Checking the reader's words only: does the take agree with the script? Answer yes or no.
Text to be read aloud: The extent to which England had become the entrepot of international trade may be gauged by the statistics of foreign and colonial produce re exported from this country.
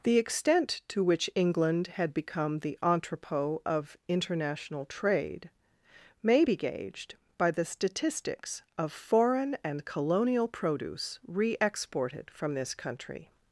yes